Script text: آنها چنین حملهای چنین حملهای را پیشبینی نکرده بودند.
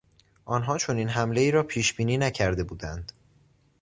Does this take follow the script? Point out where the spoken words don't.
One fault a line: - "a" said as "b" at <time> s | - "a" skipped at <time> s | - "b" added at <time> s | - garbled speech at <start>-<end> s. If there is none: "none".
- "چنین حملهای" skipped at 1.5 s